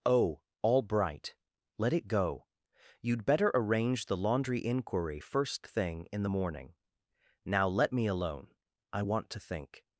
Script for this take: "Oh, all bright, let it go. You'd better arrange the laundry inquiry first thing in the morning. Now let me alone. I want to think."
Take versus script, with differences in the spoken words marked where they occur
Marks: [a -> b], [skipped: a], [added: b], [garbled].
"Oh, all bright, let it go. You'd better arrange the laundry inquiry first thing in the morning. Now let me alone. I want to think."